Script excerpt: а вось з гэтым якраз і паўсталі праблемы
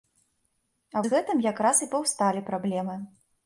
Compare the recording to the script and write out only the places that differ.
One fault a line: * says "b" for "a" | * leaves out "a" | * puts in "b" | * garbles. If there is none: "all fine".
* leaves out "вось"